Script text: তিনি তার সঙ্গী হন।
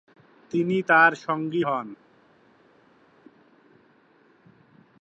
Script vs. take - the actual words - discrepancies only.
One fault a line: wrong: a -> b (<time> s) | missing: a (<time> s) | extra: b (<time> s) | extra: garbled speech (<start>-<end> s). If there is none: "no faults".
no faults